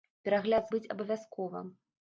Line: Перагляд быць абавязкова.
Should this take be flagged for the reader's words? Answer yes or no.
no